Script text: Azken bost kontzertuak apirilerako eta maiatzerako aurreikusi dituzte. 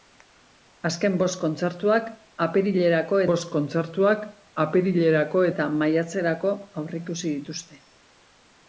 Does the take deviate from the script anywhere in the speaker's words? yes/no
yes